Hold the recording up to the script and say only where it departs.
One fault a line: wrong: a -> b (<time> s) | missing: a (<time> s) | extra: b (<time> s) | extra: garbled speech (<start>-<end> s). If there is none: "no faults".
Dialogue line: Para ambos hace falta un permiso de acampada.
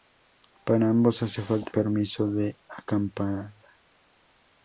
missing: un (1.7 s)